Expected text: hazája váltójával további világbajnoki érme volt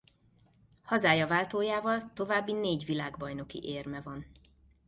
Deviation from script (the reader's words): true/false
true